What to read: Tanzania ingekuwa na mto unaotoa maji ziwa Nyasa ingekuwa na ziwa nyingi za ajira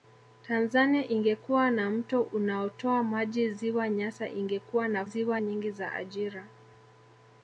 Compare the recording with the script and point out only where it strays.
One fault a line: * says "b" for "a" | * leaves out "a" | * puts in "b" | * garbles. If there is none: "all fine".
all fine